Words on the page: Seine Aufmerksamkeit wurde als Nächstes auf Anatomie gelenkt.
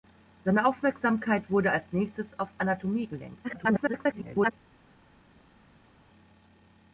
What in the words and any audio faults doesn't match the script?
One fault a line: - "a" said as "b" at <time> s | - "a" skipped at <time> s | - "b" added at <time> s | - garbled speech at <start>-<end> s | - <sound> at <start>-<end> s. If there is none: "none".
- garbled speech at 3.4-4.5 s